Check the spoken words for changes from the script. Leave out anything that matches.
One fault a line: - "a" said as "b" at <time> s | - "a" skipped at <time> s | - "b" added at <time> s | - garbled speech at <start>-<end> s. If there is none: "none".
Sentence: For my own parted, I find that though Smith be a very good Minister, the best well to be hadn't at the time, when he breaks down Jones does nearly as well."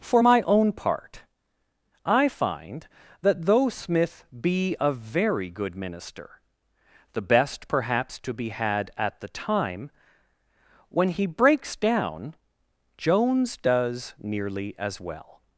- "parted" said as "part" at 0.7 s
- "well" said as "perhaps" at 7.7 s
- "hadn't" said as "had" at 8.5 s